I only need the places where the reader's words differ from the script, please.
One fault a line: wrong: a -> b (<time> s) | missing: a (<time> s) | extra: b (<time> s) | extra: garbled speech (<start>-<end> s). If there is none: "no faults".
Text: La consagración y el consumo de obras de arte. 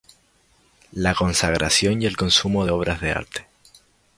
missing: de (2.6 s)